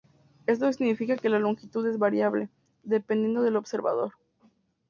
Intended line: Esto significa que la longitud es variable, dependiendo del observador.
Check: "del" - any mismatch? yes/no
no